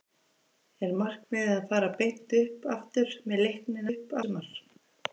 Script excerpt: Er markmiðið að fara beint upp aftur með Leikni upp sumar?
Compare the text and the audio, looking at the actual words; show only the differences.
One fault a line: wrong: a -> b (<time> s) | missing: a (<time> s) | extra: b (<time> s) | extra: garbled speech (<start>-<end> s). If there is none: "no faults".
no faults